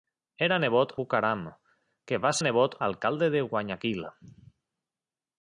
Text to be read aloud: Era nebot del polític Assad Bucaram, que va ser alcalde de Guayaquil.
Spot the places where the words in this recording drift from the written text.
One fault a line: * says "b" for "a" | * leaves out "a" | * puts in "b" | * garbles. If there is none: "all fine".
* leaves out "del polític Assad"
* says "nebot" for "ser"